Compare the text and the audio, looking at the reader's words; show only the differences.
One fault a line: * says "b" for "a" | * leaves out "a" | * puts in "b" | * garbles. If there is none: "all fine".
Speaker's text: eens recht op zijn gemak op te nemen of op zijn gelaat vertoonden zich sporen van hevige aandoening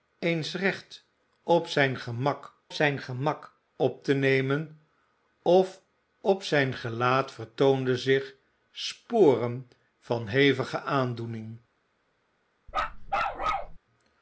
* puts in "zijn gemak"